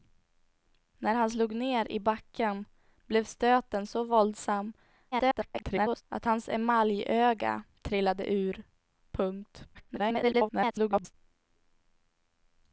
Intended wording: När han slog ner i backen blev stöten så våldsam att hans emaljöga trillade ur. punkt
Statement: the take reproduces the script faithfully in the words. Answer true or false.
false